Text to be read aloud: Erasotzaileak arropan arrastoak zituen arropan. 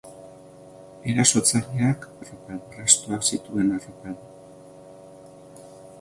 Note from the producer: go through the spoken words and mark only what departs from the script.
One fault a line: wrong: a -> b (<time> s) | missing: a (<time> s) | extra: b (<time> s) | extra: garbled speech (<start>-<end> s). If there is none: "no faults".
no faults